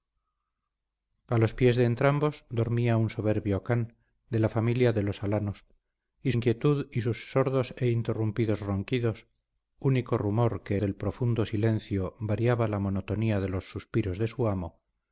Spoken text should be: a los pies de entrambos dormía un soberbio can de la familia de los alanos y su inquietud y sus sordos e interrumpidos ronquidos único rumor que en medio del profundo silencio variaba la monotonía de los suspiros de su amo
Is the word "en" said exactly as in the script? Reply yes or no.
no